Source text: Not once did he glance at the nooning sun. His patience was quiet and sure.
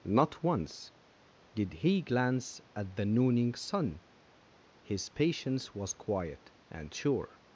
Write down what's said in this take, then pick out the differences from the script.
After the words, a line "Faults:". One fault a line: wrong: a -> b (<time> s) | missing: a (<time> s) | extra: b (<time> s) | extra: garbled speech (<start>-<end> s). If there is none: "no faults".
Not once did he glance at the nooning sun. His patience was quiet and sure.
Faults:
no faults